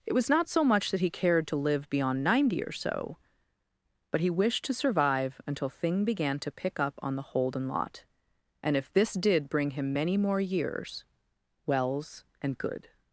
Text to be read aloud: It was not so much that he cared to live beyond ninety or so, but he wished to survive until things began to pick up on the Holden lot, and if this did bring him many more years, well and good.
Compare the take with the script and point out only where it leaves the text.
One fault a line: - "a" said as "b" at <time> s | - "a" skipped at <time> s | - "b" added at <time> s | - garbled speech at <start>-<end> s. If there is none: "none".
- "things" said as "thing" at 5.7 s
- "well" said as "wells" at 11.7 s